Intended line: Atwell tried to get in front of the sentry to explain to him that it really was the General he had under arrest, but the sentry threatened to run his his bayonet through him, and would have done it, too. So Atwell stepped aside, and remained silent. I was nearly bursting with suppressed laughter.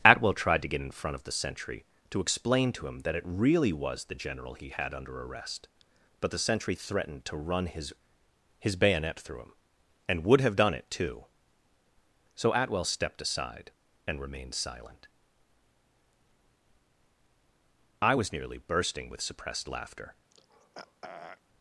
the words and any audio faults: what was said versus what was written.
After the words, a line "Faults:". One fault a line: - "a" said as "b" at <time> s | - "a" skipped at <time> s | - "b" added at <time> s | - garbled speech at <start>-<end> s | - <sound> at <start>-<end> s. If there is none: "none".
Atwell tried to get in front of the sentry to explain to him that it really was the General he had under arrest, but the sentry threatened to run his his bayonet through him, and would have done it, too. So Atwell stepped aside, and remained silent. I was nearly bursting with suppressed laughter.
Faults:
- throat clearing at 20.3-21.4 s